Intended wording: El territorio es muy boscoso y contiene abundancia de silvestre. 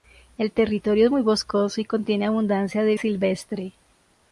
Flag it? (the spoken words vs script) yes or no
no